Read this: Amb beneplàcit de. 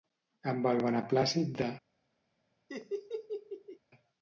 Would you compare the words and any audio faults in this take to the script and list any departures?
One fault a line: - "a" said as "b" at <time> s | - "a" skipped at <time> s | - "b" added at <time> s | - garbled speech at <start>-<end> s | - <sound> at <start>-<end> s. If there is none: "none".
- "el" added at 0.7 s
- laugh at 2.7-3.8 s